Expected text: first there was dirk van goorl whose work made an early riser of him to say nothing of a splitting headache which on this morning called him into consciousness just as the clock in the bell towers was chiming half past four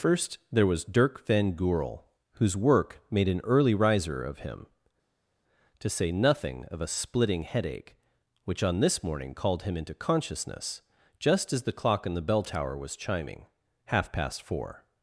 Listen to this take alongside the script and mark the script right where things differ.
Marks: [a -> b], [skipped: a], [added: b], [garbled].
first there was dirk van goorl whose work made an early riser of him to say nothing of a splitting headache which on this morning called him into consciousness just as the clock in the bell [towers -> tower] was chiming half past four